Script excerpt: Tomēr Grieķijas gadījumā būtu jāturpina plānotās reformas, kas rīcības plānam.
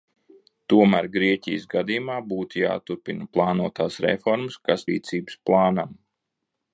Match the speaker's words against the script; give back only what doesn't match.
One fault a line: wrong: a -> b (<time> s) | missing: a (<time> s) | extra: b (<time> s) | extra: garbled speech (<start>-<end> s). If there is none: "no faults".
no faults